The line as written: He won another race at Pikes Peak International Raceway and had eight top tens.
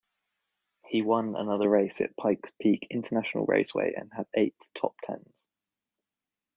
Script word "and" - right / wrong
right